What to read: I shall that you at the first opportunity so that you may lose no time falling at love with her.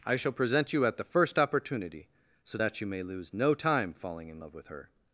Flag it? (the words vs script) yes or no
yes